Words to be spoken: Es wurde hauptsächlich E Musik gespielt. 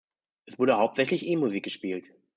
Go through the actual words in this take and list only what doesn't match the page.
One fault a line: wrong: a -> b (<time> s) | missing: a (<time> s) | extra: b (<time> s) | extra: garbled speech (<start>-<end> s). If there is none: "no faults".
no faults